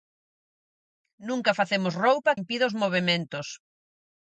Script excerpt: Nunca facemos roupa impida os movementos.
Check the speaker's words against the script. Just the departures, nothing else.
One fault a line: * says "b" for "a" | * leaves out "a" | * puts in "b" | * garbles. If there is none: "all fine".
all fine